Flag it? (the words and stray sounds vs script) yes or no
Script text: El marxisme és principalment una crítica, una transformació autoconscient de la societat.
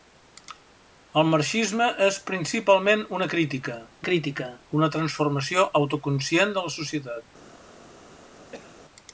yes